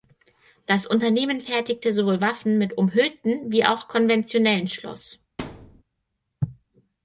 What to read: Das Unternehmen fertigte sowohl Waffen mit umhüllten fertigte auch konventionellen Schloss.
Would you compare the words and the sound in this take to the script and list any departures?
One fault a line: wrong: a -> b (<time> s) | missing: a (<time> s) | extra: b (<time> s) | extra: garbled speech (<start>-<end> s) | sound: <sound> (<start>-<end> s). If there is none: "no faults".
wrong: fertigte -> wie (3.5 s)
sound: thud (5.4-5.8 s)